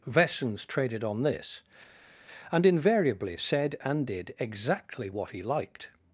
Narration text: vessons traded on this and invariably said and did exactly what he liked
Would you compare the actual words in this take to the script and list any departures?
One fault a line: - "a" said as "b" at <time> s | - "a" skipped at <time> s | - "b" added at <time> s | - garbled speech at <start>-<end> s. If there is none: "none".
none